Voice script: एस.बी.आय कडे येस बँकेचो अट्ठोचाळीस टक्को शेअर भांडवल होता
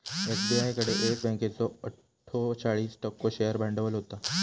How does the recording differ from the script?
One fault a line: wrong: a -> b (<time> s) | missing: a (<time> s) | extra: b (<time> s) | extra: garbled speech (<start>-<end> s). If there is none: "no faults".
no faults